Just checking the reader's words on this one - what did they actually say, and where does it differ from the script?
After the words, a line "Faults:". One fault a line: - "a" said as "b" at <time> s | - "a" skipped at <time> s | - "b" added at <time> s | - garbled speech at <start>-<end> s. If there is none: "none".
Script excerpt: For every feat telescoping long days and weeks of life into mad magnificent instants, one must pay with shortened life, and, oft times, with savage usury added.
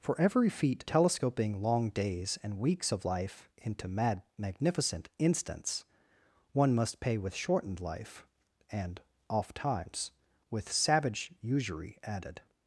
For every feat telescoping long days and weeks of life into mad magnificent instants, one must pay with shortened life, and, oft times, with savage usury added.
Faults:
none